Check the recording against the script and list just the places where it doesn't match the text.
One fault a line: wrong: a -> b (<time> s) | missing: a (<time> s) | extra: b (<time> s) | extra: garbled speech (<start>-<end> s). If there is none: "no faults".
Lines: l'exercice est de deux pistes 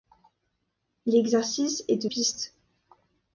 missing: deux (2.1 s)